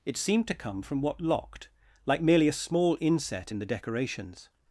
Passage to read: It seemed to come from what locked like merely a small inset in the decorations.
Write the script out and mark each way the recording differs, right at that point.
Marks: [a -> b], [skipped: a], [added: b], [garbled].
It seemed to come from what locked like merely a small inset in the decorations.